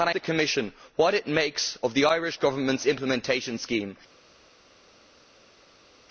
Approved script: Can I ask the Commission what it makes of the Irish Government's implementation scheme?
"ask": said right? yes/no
no